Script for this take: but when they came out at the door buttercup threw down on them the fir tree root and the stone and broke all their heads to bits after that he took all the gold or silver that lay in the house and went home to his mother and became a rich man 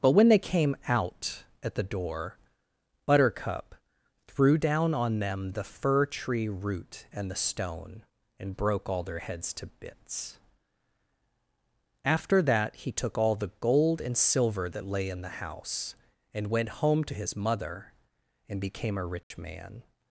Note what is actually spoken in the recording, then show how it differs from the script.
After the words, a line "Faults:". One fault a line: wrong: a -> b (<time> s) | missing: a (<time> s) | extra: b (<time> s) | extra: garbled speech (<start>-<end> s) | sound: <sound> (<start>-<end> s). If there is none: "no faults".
but when they came out at the door buttercup threw down on them the fir tree root and the stone and broke all their heads to bits after that he took all the gold and silver that lay in the house and went home to his mother and became a rich man
Faults:
wrong: or -> and (14.0 s)
sound: dropout (19.2-19.3 s)